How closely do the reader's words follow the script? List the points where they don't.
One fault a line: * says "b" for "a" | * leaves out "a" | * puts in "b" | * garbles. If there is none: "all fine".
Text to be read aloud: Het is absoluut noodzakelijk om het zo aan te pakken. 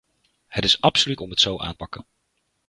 * leaves out "noodzakelijk"
* leaves out "te"